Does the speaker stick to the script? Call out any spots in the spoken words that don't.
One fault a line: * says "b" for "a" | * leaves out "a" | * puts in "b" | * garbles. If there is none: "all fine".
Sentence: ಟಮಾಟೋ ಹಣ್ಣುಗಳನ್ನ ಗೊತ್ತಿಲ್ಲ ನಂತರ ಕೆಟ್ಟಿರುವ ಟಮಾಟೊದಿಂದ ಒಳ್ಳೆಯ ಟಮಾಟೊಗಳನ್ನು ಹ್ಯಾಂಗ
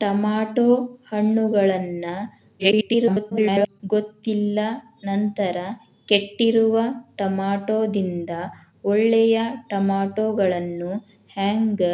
* garbles